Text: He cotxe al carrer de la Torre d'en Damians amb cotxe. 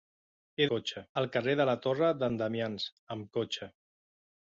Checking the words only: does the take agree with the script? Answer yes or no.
yes